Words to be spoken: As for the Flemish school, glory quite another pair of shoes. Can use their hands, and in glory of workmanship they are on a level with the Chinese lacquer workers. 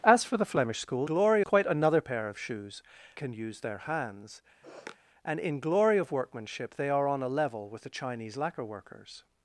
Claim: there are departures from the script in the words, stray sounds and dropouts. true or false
true